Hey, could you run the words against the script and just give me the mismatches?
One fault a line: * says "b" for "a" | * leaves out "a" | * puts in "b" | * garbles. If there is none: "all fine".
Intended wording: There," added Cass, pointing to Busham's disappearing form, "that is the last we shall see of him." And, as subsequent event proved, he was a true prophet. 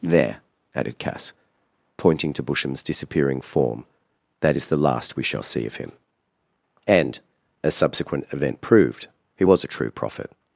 all fine